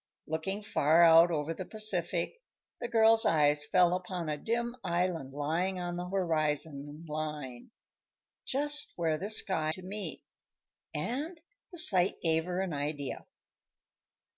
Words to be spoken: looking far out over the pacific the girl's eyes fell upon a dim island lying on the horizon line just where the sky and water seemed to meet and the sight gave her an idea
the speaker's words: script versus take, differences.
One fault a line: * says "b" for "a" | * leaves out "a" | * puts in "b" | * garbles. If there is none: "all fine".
* leaves out "and water seemed"